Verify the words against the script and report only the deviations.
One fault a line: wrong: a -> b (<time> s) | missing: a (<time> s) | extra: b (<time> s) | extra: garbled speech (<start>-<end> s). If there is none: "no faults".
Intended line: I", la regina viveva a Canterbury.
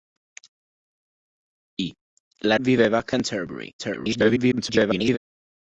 missing: regina (2.6 s)
extra: garbled speech (3.8-5.2 s)